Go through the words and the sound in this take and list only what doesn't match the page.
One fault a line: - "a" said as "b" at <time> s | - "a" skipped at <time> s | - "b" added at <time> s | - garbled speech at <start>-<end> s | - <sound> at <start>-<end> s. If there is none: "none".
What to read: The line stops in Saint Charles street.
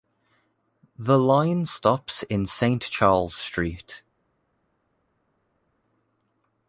none